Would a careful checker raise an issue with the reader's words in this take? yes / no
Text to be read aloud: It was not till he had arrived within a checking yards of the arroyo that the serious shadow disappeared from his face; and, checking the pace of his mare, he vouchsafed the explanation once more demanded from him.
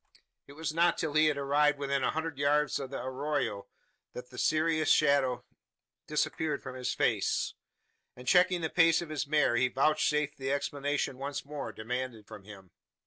yes